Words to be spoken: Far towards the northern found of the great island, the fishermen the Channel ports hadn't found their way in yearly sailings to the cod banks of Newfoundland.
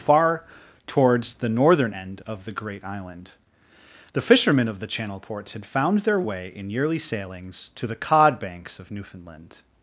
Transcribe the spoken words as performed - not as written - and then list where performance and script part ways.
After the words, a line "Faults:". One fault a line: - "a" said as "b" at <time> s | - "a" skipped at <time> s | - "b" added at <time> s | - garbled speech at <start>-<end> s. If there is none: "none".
Far towards the northern end of the great island, the fishermen of the Channel ports had found their way in yearly sailings to the cod banks of Newfoundland.
Faults:
- "found" said as "end" at 1.9 s
- "of" added at 4.7 s
- "hadn't" said as "had" at 5.5 s